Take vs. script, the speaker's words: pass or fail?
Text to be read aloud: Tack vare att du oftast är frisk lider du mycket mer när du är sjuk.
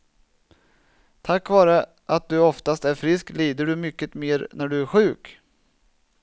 pass